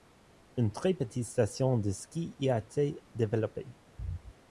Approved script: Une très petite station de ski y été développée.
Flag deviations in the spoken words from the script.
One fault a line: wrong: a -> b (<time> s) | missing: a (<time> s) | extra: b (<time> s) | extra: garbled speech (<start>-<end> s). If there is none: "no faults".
extra: a (2.5 s)